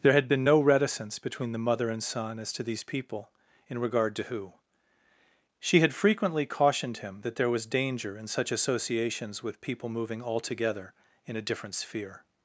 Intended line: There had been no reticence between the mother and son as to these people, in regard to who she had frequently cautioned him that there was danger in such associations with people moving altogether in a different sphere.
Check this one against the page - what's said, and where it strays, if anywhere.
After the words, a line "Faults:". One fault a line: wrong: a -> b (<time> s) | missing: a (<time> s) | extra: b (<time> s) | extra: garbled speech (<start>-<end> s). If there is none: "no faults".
There had been no reticence between the mother and son as to these people, in regard to who she had frequently cautioned him that there was danger in such associations with people moving altogether in a different sphere.
Faults:
no faults